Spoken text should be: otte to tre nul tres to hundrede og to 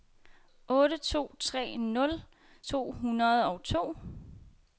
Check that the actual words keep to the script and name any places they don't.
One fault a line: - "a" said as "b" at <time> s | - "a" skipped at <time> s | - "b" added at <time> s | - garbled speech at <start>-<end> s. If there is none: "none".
- "tres" skipped at 2.2 s